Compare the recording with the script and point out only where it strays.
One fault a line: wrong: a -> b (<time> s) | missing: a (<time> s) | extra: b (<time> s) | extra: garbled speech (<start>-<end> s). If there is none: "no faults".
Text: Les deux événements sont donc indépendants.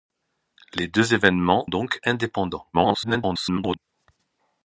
missing: sont (1.7 s)
extra: garbled speech (2.7-3.8 s)